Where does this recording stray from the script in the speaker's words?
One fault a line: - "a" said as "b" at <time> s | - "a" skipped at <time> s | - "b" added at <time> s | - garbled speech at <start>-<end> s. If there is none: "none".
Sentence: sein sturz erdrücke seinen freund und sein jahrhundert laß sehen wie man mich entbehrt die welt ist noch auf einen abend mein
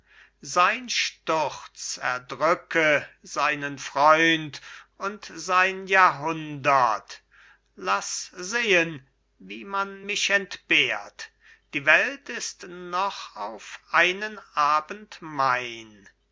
none